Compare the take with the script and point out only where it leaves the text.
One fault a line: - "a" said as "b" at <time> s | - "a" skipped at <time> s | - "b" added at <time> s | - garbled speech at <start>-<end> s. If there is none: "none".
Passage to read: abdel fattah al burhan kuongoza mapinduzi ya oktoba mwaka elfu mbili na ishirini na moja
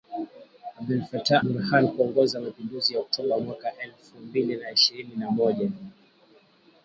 - "al" skipped at 1.4 s